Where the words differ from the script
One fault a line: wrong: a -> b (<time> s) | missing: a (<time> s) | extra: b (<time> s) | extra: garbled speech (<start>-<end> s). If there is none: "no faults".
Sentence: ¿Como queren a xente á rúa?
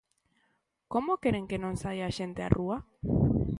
extra: que non saia (1.5 s)